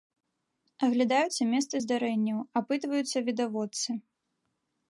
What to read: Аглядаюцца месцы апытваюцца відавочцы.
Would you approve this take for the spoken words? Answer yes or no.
no